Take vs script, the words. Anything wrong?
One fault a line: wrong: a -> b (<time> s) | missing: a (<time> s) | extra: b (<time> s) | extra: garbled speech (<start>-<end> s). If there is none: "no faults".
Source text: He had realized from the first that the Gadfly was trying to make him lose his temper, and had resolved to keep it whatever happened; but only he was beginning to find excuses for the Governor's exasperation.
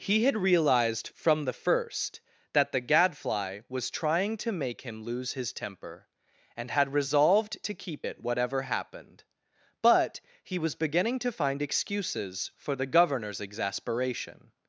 missing: only (10.2 s)